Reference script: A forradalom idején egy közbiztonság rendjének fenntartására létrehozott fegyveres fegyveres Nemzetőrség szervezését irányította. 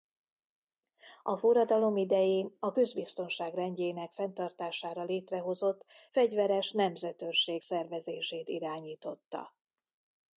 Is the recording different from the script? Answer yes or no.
yes